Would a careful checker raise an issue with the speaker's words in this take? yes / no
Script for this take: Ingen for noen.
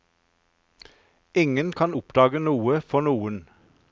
yes